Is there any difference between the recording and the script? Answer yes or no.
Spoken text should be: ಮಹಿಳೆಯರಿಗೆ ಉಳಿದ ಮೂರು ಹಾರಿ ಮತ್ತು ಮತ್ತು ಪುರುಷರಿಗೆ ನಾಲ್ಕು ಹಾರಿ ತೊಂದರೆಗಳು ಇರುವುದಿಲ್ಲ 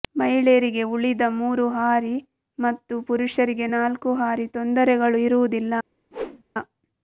yes